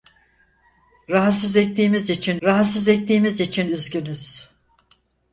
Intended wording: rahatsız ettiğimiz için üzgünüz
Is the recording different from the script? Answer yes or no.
yes